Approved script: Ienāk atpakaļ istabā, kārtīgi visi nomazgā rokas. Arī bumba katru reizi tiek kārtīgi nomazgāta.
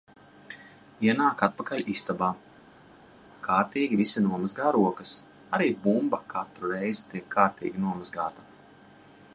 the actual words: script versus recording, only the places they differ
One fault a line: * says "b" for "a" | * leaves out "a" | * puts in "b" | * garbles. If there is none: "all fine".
all fine